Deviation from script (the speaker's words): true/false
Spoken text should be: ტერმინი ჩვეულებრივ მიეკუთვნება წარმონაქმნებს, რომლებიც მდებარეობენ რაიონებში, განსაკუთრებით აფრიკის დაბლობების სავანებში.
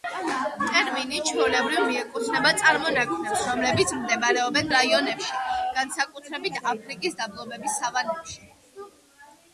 false